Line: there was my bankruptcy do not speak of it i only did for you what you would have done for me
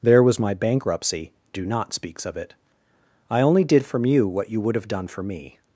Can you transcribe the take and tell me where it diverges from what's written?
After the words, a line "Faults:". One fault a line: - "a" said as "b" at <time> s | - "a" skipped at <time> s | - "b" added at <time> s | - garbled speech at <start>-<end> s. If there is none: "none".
there was my bankruptcy do not speaks of it i only did from you what you would have done for me
Faults:
- "speak" said as "speaks" at 1.9 s
- "for" said as "from" at 3.9 s